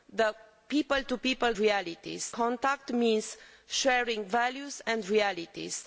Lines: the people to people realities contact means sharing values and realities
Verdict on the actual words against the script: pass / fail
pass